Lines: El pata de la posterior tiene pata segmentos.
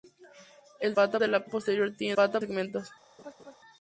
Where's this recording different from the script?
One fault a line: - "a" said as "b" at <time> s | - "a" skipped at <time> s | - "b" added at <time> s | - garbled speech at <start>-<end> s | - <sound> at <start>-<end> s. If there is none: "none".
- laugh at 3.2-3.6 s